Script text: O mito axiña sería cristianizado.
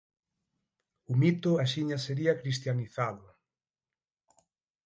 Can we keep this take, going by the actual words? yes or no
yes